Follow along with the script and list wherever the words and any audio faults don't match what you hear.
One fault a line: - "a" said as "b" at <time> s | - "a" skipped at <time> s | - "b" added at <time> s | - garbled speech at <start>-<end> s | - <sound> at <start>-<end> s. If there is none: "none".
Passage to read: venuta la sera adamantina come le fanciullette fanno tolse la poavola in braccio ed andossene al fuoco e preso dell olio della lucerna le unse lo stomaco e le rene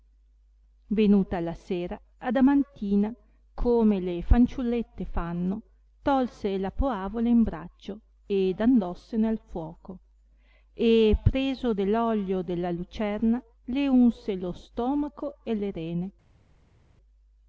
none